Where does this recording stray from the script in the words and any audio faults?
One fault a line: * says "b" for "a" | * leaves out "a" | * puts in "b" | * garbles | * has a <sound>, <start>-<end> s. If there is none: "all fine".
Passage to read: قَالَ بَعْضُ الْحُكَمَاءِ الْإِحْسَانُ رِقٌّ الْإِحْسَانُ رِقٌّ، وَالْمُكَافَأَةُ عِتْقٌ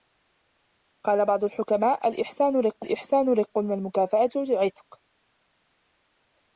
all fine